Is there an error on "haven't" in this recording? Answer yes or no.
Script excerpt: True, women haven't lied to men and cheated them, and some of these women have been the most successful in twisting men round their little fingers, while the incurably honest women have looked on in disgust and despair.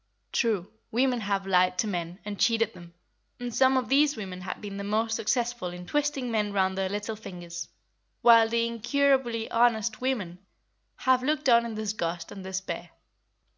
yes